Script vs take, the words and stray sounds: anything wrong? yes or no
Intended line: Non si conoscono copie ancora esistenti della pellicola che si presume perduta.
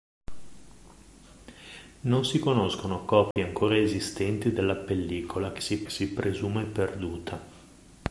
yes